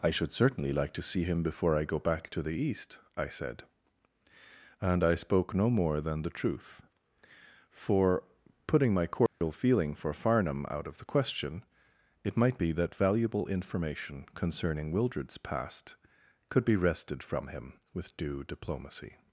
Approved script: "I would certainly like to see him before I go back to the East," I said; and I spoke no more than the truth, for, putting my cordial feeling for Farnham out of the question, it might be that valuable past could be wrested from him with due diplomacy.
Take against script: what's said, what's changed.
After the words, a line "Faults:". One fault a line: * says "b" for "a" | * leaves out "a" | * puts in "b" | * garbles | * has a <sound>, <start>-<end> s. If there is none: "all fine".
"I should certainly like to see him before I go back to the East," I said; and I spoke no more than the truth, for, putting my cordial feeling for Farnham out of the question, it might be that valuable information concerning Wildred's past could be wrested from him with due diplomacy.
Faults:
* says "should" for "would"
* has a dropout, 9.3-9.4 s
* puts in "information concerning Wildred's"